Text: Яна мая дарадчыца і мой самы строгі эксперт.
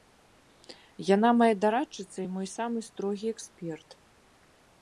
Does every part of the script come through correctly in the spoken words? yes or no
yes